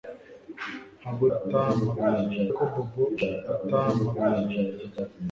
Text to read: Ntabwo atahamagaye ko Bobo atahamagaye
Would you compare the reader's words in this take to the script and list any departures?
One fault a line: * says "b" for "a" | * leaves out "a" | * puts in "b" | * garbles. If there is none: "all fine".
all fine